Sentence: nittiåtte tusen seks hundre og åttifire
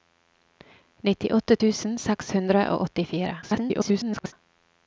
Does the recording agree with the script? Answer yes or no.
no